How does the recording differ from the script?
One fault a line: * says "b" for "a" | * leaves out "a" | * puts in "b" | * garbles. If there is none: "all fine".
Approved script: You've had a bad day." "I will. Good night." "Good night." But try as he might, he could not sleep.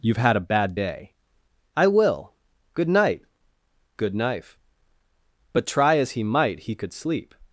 * says "knife" for "night"
* leaves out "not"